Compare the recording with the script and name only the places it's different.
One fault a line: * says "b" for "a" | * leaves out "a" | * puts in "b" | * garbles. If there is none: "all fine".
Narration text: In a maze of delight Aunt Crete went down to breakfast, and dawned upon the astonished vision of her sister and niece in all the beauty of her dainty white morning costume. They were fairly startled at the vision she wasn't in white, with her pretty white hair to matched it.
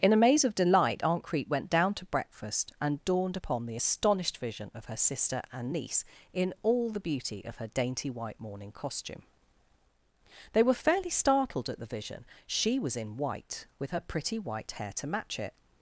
* says "was" for "wasn't"
* says "match" for "matched"